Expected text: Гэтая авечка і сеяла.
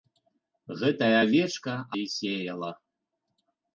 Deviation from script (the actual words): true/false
false